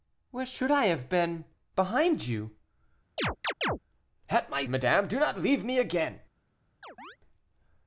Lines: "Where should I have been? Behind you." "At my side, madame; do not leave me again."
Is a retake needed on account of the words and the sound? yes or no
yes